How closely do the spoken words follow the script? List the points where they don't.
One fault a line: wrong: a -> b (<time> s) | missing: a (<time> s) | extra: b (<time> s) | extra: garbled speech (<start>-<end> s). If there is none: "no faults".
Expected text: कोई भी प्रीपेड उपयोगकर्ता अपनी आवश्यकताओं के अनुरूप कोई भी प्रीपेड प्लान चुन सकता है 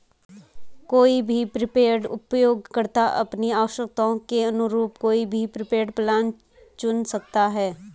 no faults